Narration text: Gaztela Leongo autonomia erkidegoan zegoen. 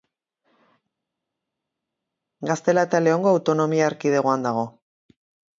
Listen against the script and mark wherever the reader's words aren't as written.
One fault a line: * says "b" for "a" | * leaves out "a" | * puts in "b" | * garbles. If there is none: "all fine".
* puts in "eta"
* says "dago" for "zegoen"